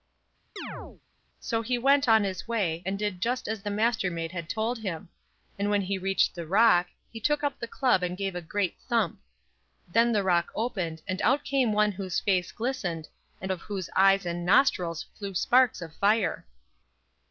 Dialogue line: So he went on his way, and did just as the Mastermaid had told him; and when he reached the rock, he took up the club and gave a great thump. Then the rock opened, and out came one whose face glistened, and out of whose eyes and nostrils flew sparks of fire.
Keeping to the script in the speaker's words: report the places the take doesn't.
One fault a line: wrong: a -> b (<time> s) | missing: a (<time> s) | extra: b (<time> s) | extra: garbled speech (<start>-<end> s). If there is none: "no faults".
missing: out (13.5 s)